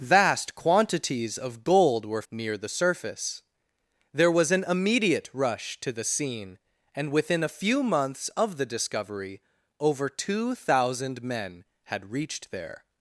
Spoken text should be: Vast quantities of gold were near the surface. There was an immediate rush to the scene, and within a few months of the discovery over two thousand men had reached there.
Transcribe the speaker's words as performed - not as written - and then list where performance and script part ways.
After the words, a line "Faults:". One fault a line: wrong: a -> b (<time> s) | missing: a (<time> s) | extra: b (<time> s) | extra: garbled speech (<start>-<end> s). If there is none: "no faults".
Vast quantities of gold were near the surface. There was an immediate rush to the scene, and within a few months of the discovery over two thousand men had reached there.
Faults:
no faults